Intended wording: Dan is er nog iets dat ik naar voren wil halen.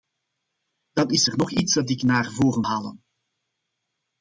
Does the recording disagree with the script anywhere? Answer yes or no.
yes